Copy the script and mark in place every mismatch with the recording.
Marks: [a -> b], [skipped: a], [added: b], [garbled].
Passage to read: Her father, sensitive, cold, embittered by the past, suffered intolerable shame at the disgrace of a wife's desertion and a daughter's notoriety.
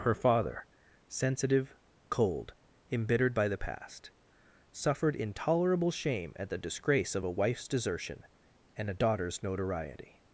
Her father, sensitive, cold, embittered by the past, suffered intolerable shame at the disgrace of a wife's desertion and a daughter's notoriety.